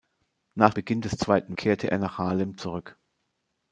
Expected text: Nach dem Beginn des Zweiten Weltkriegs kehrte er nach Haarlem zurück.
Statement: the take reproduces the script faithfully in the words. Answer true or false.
false